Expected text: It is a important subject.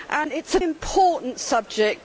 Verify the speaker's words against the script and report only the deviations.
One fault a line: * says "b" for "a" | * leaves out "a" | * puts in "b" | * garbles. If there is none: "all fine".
all fine